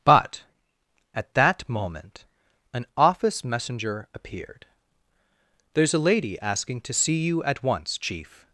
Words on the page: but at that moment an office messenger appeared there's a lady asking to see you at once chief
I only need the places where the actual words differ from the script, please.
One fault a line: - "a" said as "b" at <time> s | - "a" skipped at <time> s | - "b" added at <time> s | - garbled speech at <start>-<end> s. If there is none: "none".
none